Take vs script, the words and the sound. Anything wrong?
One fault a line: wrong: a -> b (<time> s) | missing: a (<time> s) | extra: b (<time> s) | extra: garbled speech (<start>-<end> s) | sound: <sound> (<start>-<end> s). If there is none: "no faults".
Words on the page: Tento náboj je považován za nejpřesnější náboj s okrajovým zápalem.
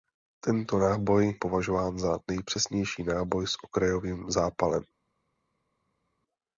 missing: je (1.4 s)